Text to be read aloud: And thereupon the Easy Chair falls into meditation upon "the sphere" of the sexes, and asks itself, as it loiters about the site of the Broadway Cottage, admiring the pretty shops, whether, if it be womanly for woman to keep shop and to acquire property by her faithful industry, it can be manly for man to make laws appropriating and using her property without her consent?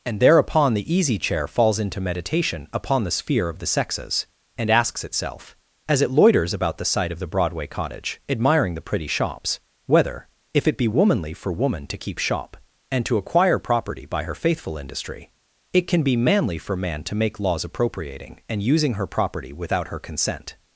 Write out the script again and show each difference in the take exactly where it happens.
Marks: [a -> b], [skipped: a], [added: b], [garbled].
And thereupon the Easy Chair falls into meditation upon "the sphere" of the sexes, and asks itself, as it loiters about the site of the Broadway Cottage, admiring the pretty shops, whether, if it be womanly for woman to keep shop and to acquire property by her faithful industry, it can be manly for man to make laws appropriating and using her property without her consent?